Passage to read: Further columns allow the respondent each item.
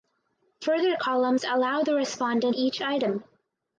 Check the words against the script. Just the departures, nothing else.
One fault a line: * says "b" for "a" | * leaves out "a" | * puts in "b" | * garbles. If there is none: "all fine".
all fine